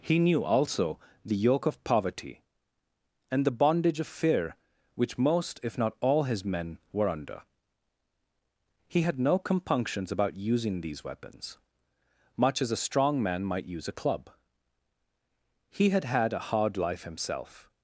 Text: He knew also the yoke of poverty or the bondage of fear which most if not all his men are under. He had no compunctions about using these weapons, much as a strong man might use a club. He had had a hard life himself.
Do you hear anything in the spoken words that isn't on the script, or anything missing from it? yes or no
yes